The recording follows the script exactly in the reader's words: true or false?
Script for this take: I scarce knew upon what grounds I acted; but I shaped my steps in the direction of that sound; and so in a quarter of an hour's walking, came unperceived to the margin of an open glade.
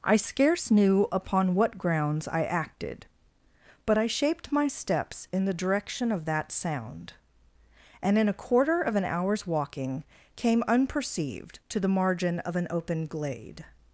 false